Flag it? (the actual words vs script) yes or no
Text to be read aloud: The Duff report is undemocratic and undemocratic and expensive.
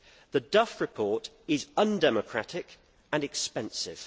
yes